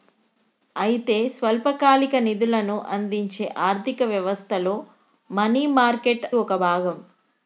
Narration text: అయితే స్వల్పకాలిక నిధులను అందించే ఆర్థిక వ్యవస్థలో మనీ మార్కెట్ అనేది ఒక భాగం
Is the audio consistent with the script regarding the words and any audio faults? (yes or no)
no